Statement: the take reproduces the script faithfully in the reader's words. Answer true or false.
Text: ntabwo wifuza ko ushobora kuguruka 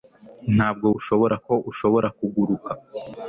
false